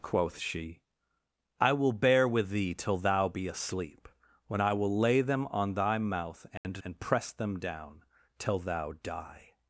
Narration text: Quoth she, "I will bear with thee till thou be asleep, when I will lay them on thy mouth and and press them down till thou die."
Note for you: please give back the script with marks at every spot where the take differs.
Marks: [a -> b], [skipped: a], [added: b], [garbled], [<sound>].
Quoth she, "I will bear with thee till thou be asleep, when I will lay them on thy mouth and [dropout] and press them down till thou die."